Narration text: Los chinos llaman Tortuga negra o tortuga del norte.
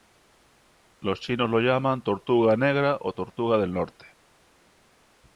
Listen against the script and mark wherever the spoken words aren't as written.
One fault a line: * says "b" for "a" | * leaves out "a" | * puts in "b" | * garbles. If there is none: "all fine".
* puts in "lo"